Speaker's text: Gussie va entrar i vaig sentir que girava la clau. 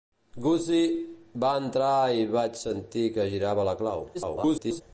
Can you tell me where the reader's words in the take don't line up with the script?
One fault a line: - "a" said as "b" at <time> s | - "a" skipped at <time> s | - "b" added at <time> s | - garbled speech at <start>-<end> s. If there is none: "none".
- garbled speech at 4.1-4.8 s